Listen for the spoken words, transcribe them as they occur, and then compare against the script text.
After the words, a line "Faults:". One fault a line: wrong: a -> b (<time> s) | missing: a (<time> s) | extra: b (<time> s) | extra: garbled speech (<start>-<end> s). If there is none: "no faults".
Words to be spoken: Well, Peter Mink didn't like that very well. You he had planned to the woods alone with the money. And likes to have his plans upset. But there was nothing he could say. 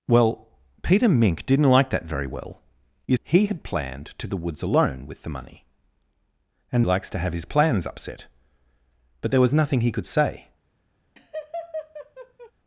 Well, Peter Mink didn't like that very well. You he had planned to the woods alone with the money. And likes to have his plans upset. But there was nothing he could say.
Faults:
no faults